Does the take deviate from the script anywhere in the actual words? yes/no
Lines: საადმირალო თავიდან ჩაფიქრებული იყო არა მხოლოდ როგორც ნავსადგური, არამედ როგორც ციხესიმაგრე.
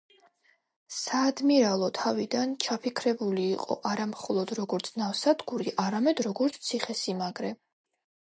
no